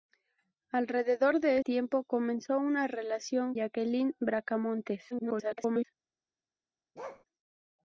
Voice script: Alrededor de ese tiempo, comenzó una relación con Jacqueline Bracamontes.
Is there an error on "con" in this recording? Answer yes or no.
yes